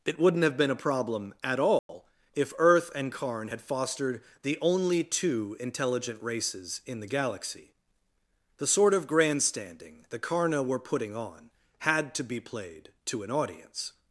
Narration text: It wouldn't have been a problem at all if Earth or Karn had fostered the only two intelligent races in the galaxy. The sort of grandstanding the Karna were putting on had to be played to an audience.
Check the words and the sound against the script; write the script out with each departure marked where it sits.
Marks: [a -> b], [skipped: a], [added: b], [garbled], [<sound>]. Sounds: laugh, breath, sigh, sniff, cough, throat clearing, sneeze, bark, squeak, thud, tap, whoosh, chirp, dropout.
It wouldn't have been a problem at all [dropout] if Earth [or -> and] Karn had fostered the only two intelligent races in the galaxy. The sort of grandstanding the Karna were putting on had to be played to an audience.